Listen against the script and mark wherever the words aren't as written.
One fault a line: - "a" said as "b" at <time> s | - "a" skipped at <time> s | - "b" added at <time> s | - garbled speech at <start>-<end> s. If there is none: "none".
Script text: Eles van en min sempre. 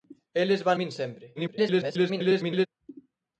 - "en" skipped at 0.8 s
- garbled speech at 1.3-2.7 s